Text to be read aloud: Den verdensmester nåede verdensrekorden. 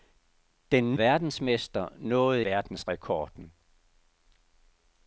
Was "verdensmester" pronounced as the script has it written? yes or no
yes